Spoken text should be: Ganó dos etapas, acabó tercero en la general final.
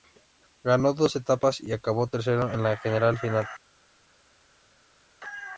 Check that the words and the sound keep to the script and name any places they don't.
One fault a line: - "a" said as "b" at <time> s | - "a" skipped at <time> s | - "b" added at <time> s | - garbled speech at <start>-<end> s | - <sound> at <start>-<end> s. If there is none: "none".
- "y" added at 1.6 s